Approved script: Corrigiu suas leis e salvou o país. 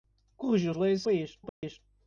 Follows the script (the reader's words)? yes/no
no